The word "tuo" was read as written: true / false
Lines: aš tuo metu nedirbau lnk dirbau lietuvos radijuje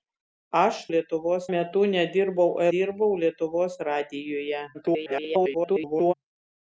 false